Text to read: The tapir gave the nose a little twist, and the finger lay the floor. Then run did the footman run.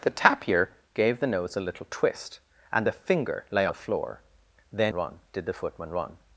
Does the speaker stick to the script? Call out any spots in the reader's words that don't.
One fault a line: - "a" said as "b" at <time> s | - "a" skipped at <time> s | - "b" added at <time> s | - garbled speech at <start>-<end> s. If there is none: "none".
none